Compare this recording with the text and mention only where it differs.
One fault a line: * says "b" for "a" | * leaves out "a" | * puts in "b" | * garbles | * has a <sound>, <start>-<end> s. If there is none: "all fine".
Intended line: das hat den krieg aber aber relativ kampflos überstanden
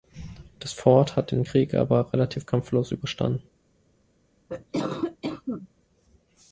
* puts in "fort"
* leaves out "aber"
* has a cough, 4.5-5.7 s